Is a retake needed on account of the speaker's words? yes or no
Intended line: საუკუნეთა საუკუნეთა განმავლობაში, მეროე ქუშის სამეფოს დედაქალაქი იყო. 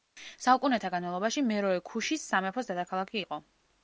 yes